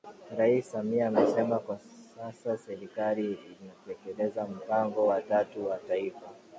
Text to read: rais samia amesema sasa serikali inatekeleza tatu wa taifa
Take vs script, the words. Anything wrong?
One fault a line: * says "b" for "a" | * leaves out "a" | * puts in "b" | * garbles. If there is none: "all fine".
* puts in "kwa"
* puts in "mpango wa"